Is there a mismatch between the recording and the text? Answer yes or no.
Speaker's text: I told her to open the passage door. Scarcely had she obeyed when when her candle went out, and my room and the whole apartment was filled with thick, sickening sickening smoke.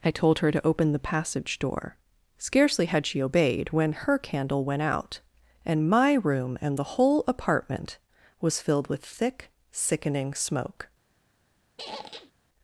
yes